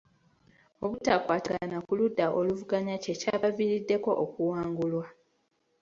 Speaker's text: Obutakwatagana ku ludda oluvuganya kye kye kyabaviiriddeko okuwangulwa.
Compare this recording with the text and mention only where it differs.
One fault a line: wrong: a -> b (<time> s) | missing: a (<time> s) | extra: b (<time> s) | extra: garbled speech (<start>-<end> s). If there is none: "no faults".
missing: kye (3.1 s)